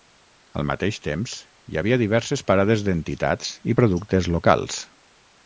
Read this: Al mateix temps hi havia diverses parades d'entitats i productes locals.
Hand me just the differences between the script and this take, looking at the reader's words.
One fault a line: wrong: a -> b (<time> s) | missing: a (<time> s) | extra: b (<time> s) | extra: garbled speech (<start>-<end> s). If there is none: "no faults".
no faults